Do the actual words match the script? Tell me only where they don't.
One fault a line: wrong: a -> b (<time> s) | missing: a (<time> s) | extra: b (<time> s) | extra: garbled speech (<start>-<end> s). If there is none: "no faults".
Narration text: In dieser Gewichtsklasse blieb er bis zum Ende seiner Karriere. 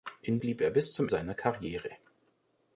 missing: dieser Gewichtsklasse (0.4 s)
missing: Ende (1.1 s)